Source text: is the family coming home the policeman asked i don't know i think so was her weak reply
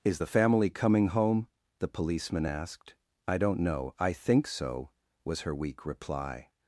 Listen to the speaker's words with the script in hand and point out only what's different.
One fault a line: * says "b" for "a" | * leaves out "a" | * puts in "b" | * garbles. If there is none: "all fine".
all fine